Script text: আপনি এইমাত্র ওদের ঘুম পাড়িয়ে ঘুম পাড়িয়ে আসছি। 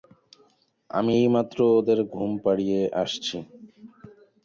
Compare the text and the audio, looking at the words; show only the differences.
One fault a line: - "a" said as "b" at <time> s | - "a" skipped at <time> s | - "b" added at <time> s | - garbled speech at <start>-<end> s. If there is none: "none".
- "আপনি" said as "আমি" at 0.9 s
- "ঘুম পাড়িয়ে" skipped at 2.8 s